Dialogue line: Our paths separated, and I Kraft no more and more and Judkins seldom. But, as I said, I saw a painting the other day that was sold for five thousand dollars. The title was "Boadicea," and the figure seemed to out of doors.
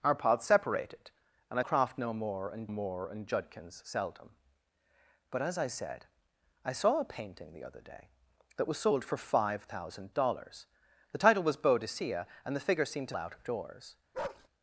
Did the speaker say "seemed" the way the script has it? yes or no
yes